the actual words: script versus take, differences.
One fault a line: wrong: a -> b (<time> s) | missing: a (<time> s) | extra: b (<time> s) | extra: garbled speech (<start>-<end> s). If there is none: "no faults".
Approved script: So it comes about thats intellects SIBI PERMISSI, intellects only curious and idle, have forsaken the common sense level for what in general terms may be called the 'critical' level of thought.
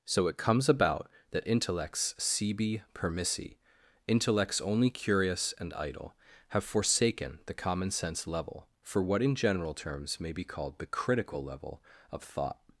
wrong: thats -> that (1.3 s)